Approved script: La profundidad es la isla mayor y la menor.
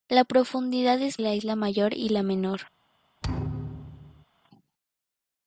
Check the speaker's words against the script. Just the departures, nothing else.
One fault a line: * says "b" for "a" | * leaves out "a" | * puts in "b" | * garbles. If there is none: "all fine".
all fine